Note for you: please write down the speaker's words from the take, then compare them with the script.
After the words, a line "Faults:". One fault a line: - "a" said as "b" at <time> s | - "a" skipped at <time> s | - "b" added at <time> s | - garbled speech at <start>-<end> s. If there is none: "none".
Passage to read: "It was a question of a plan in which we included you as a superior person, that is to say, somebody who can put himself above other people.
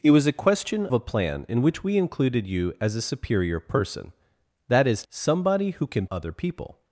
"It was a question a plan in which we included you as a superior person, that is somebody who can other people.
Faults:
- "of" skipped at 0.9 s
- "to say" skipped at 5.0 s
- "put himself above" skipped at 6.1 s